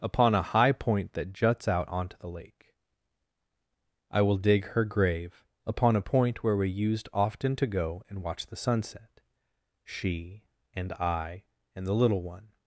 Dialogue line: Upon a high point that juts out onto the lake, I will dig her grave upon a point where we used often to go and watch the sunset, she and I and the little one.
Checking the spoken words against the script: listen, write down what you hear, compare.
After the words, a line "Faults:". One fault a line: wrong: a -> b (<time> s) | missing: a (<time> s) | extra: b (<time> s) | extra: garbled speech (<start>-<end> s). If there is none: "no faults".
Upon a high point that juts out onto the lake, I will dig her grave upon a point where we used often to go and watch the sunset, she and I and the little one.
Faults:
no faults